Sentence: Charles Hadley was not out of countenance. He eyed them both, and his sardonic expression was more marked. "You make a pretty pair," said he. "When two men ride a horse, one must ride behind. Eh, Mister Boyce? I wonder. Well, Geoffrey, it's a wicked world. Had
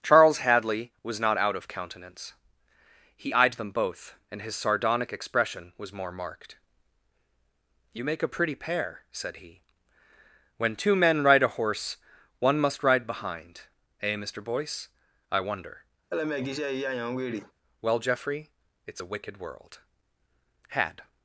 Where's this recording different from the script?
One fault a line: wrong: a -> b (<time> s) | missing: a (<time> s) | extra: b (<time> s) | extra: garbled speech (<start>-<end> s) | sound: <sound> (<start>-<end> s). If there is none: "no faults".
sound: laugh (16.1-17.5 s)